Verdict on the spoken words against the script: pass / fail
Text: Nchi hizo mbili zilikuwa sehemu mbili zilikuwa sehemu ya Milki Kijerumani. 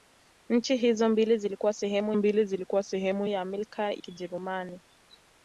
pass